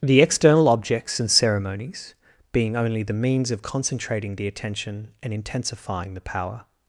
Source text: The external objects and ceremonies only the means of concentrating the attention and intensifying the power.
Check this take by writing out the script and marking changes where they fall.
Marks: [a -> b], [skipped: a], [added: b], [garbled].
The external objects and ceremonies [added: being] only the means of concentrating the attention and intensifying the power.